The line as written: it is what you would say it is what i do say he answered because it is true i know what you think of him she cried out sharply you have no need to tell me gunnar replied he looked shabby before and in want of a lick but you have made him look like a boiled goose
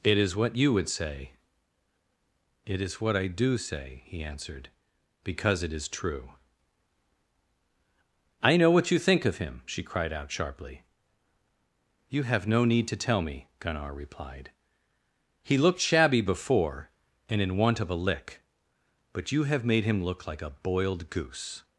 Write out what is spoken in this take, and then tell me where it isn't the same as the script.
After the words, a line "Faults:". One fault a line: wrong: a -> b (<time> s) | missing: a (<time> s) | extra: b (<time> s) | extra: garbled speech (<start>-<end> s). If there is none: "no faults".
it is what you would say it is what i do say he answered because it is true i know what you think of him she cried out sharply you have no need to tell me gunnar replied he looked shabby before and in want of a lick but you have made him look like a boiled goose
Faults:
no faults